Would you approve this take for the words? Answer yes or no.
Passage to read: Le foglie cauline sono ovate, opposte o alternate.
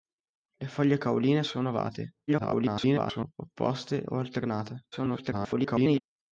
no